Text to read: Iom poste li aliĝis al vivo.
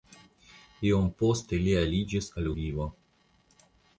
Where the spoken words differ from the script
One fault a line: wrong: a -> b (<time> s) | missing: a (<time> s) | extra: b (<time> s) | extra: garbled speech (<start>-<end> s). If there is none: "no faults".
no faults